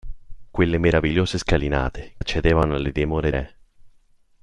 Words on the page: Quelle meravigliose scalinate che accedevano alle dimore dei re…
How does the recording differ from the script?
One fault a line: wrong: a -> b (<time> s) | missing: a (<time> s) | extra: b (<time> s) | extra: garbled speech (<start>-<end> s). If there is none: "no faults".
missing: che (2.1 s)
missing: dei (3.3 s)